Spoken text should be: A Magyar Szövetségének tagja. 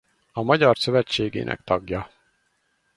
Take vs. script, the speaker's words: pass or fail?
pass